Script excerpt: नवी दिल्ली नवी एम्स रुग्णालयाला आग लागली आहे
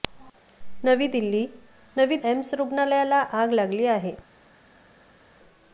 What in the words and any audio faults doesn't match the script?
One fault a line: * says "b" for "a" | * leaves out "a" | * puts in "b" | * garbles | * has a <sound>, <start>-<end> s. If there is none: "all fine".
all fine